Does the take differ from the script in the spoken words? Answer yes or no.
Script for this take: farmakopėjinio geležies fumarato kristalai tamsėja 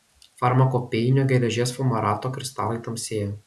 no